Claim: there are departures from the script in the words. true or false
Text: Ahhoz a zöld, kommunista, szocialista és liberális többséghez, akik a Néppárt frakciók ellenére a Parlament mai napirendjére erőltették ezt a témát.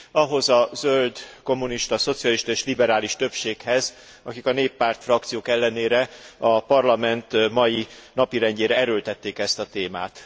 false